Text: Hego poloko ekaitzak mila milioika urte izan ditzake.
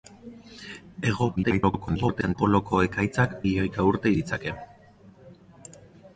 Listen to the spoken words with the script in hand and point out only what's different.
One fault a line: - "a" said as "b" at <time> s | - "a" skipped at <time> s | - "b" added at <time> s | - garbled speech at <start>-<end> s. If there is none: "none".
- garbled speech at 1.4-2.4 s
- "mila" skipped at 3.4 s
- "izan" skipped at 4.1 s